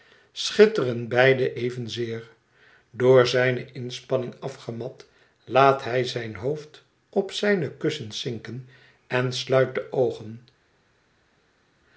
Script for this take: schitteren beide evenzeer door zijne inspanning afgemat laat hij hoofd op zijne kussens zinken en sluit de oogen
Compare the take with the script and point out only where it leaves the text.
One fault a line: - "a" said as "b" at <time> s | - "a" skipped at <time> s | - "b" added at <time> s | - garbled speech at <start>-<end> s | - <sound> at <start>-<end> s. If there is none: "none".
- "zijn" added at 6.0 s